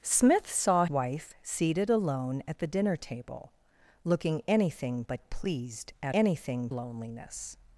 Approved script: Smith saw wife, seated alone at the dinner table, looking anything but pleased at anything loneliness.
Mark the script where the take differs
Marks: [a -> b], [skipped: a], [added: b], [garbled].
Smith saw wife, seated alone at the dinner table, looking anything but pleased at anything loneliness.